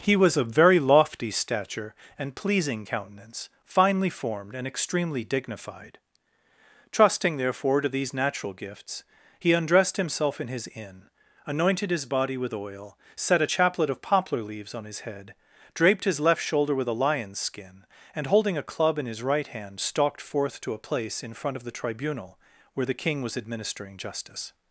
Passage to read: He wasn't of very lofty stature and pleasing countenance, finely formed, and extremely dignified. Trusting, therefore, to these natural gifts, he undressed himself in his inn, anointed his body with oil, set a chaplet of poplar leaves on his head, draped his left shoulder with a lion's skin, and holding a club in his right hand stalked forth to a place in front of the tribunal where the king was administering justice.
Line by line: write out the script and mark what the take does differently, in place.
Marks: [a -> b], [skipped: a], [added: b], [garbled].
He [wasn't -> was] of very lofty stature and pleasing countenance, finely formed, and extremely dignified. Trusting, therefore, to these natural gifts, he undressed himself in his inn, anointed his body with oil, set a chaplet of poplar leaves on his head, draped his left shoulder with a lion's skin, and holding a club in his right hand stalked forth to a place in front of the tribunal where the king was administering justice.